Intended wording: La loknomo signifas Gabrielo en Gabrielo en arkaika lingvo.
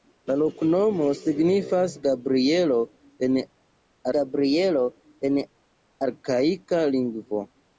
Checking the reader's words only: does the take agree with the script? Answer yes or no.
yes